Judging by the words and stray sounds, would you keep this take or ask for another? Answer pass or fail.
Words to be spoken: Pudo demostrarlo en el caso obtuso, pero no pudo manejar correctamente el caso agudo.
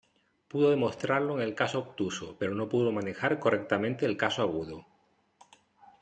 pass